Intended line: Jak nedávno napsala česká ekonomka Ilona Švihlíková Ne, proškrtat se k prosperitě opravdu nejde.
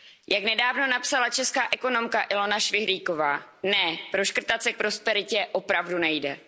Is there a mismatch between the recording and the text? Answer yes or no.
no